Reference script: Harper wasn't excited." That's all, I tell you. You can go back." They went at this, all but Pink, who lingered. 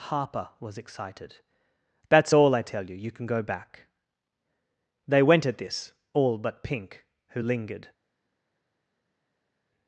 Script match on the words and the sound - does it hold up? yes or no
no